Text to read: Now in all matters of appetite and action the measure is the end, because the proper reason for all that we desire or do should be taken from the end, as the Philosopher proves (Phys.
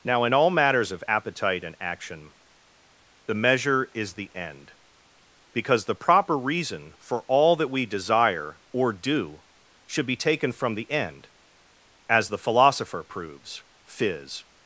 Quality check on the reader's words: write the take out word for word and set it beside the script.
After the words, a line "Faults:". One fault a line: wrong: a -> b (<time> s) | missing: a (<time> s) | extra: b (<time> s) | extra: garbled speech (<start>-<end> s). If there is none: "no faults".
Now in all matters of appetite and action the measure is the end, because the proper reason for all that we desire or do should be taken from the end, as the Philosopher proves (Phys.
Faults:
no faults